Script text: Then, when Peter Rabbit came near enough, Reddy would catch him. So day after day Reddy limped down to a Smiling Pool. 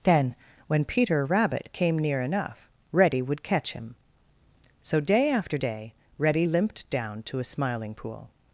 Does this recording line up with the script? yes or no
yes